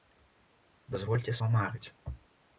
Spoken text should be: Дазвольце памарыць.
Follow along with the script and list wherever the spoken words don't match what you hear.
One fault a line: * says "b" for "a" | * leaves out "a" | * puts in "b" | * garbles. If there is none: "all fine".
all fine